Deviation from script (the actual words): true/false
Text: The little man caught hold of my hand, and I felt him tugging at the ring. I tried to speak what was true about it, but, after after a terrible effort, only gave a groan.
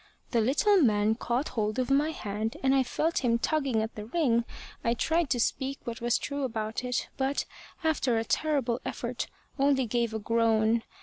true